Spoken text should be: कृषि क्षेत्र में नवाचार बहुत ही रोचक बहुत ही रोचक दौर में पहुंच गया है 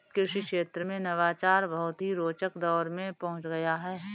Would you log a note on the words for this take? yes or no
yes